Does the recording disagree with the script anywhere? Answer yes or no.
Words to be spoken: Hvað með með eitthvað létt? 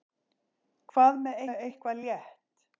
no